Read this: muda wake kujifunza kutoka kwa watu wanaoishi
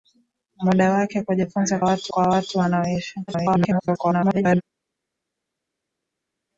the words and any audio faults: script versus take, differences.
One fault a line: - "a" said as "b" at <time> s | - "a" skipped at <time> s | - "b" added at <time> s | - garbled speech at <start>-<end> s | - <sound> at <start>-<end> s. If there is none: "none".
- "kutoka" said as "watu" at 1.8 s
- garbled speech at 3.3-4.6 s